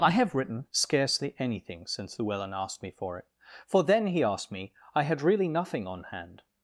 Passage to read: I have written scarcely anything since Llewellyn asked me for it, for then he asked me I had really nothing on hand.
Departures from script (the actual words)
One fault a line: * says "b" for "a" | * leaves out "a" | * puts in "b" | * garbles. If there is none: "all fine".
all fine